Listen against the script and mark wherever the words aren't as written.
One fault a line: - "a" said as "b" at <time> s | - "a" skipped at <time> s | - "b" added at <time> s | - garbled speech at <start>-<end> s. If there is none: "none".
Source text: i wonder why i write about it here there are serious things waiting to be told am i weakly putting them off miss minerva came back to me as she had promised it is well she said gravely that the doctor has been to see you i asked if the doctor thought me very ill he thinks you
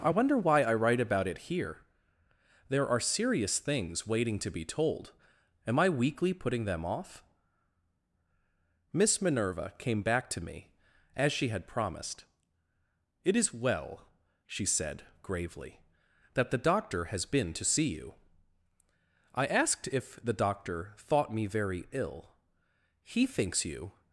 none